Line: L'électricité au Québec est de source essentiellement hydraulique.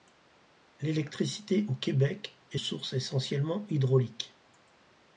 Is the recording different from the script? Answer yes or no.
yes